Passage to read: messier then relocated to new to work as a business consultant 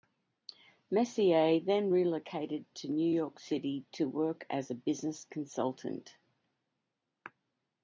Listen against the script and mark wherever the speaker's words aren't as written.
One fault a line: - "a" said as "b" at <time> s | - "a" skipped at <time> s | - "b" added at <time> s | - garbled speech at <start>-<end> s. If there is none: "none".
- "york city" added at 3.1 s